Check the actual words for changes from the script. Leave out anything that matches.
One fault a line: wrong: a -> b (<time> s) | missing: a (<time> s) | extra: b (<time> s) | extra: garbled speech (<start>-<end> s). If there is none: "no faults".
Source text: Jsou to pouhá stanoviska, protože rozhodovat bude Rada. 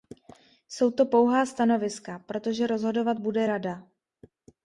no faults